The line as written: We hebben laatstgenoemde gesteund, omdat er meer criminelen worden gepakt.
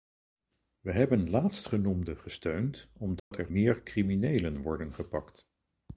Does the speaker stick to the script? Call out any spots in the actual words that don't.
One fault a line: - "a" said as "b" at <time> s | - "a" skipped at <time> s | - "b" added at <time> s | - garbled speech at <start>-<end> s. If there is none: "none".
none